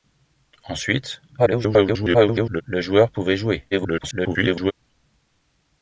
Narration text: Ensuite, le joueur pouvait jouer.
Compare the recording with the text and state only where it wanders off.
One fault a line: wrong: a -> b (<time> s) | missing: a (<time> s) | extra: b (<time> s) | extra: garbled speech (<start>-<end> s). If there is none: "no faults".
extra: garbled speech (1.4-2.6 s)
extra: garbled speech (3.7-4.7 s)